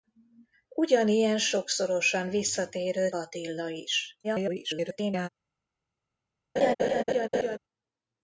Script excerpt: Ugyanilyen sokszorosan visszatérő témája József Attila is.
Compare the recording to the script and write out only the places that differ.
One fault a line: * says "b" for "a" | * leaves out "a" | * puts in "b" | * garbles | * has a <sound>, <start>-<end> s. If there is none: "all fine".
* leaves out "témája József"
* garbles
* has a laugh, 6.6-7.6 s